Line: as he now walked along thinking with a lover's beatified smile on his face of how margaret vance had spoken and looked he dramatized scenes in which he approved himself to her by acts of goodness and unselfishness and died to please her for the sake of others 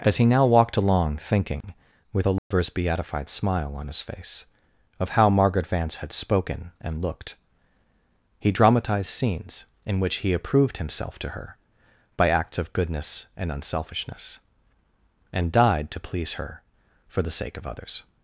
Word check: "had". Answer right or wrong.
right